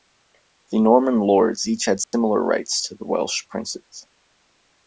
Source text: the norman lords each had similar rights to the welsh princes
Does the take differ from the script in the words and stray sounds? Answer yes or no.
yes